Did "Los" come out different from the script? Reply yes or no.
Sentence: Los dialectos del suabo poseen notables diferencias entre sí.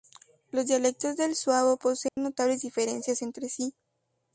no